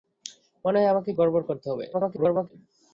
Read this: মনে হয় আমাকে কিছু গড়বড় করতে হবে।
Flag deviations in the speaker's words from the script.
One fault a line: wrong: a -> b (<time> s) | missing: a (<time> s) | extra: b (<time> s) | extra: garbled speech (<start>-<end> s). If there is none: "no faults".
missing: কিছু (1.1 s)
extra: garbled speech (1.9-2.5 s)